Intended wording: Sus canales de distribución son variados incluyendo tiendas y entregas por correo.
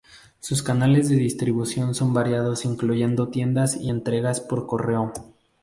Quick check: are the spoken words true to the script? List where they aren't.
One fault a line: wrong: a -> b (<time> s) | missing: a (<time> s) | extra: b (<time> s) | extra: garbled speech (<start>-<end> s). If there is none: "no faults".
no faults